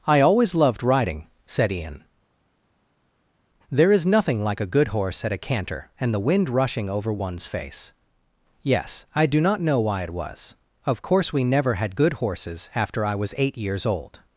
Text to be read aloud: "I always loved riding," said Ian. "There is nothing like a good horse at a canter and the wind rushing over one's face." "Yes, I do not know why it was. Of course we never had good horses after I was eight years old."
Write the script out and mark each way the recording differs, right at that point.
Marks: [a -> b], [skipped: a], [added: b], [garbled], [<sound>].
"I always loved riding," said Ian. "There is nothing like a good horse at a canter and the wind rushing over one's face." "Yes, I do not know why it was. Of course we never had good horses after I was eight years old."